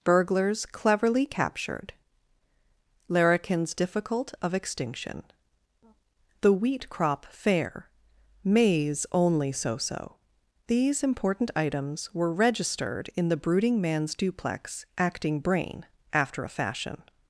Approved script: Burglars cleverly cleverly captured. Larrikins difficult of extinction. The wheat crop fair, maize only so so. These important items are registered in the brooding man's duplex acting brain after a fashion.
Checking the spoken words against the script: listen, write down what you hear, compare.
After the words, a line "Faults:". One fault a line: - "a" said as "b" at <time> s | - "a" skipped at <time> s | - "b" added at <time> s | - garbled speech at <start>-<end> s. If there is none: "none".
Burglars cleverly captured. Larrikins difficult of extinction. The wheat crop fair, maize only so so. These important items were registered in the brooding man's duplex acting brain after a fashion.
Faults:
- "cleverly" skipped at 1.2 s
- "are" said as "were" at 12.1 s